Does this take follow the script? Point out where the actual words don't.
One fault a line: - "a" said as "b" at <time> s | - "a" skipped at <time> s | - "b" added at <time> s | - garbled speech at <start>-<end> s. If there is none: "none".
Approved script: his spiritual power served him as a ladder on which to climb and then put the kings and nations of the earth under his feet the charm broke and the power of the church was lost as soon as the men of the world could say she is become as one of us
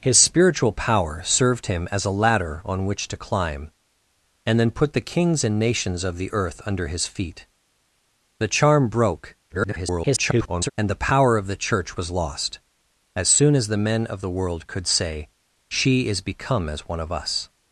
- garbled speech at 9.5-10.7 s